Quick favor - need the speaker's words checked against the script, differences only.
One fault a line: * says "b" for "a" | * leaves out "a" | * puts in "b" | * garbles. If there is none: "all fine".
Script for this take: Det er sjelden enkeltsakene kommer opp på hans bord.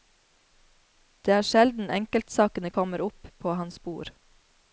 all fine